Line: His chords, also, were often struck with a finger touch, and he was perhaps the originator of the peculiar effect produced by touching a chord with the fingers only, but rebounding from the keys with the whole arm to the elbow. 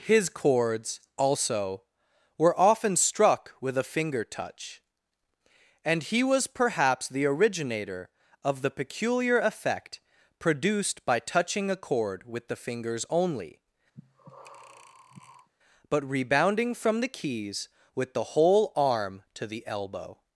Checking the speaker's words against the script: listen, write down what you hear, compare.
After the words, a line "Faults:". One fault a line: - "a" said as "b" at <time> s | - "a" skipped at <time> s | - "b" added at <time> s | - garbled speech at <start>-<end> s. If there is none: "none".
His chords, also, were often struck with a finger touch, and he was perhaps the originator of the peculiar effect produced by touching a chord with the fingers only, but rebounding from the keys with the whole arm to the elbow.
Faults:
none